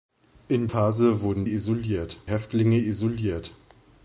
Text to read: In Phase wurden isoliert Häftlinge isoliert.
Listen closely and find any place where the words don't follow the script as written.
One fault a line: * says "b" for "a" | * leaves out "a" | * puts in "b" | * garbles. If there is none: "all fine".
all fine